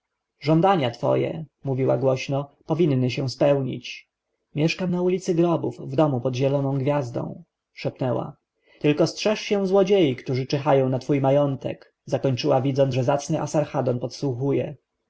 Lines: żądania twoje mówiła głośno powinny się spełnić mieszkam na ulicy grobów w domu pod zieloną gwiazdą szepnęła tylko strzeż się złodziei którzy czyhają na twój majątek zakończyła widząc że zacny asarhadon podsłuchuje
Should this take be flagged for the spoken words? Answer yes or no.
no